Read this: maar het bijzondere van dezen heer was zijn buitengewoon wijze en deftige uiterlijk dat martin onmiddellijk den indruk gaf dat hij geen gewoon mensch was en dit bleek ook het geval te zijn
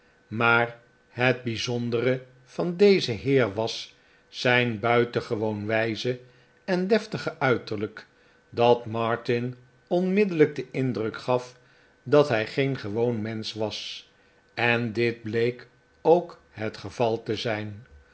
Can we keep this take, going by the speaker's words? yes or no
yes